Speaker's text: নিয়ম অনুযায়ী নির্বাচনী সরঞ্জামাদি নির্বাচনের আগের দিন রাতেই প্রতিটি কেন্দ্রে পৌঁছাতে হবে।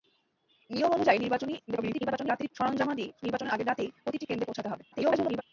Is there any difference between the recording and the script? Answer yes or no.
yes